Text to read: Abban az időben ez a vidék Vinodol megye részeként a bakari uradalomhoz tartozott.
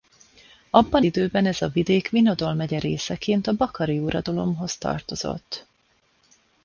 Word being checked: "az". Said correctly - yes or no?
no